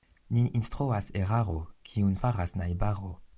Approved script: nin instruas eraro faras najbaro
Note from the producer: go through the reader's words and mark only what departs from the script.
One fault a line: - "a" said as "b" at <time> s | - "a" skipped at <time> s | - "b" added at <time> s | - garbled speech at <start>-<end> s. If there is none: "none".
- "kiun" added at 1.9 s